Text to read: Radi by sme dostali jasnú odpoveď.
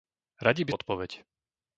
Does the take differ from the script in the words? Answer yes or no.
yes